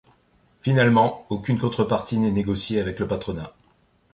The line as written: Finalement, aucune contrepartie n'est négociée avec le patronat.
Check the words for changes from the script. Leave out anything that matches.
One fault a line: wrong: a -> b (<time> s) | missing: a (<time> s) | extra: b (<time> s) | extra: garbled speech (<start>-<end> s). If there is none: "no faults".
no faults